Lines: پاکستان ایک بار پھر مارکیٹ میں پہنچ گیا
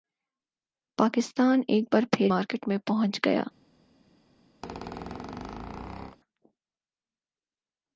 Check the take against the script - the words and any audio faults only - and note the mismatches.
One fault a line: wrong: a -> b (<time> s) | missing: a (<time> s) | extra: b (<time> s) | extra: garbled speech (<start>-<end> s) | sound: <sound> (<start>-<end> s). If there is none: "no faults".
sound: squeak (4.6-6.2 s)